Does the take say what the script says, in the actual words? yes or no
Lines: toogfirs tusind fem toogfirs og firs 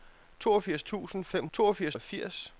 yes